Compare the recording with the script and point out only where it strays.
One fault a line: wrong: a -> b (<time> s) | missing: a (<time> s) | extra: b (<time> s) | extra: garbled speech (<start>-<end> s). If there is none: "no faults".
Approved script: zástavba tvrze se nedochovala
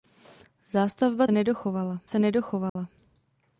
wrong: tvrze -> nedochovala (1.3 s)